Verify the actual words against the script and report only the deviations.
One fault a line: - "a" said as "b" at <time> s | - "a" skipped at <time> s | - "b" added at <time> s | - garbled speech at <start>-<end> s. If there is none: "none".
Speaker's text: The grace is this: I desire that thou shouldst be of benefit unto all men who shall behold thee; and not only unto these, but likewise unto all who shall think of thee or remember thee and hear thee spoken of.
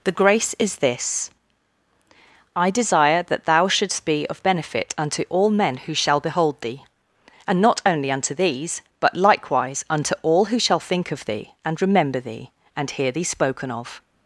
- "or" said as "and" at 11.6 s